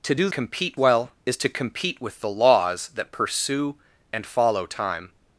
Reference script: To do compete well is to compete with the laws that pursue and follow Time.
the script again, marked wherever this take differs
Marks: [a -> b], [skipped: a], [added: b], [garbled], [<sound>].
To do compete well is to compete with the laws that pursue and follow Time.